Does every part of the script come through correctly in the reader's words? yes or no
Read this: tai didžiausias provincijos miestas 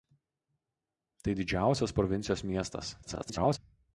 no